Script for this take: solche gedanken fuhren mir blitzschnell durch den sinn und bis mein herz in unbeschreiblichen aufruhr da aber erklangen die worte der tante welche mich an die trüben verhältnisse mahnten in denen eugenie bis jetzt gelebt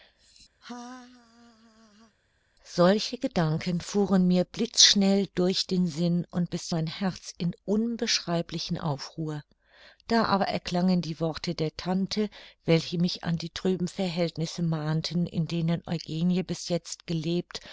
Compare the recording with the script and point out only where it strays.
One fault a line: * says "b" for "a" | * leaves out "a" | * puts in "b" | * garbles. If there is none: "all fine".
all fine